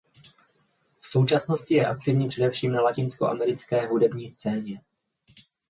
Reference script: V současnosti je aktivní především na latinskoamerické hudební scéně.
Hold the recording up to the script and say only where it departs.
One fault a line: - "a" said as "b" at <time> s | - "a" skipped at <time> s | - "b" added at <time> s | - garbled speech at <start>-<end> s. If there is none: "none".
none